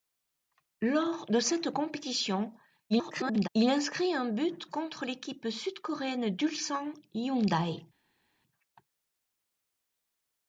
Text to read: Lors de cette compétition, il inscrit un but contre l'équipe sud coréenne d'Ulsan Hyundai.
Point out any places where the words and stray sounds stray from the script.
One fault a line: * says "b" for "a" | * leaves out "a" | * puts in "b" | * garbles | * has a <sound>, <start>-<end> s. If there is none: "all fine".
* garbles